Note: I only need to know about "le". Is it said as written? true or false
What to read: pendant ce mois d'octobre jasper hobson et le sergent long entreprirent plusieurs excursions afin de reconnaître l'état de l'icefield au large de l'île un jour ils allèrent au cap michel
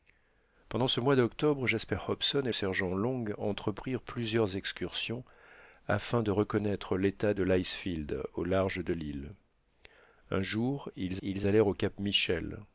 false